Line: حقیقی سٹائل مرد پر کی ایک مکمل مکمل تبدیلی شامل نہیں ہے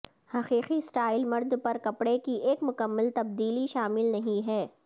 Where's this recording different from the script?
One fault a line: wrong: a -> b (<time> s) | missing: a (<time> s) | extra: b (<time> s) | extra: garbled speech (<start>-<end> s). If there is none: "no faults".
extra: کپڑے (1.8 s)
missing: مکمل (3.1 s)